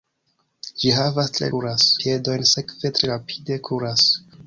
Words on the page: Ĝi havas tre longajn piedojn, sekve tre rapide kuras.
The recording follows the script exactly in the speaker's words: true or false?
false